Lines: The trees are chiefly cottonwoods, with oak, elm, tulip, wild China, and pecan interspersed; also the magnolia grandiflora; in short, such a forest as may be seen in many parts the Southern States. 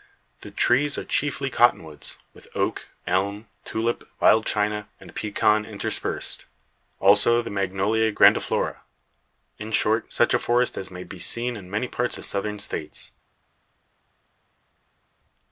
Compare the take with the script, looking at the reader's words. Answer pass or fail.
pass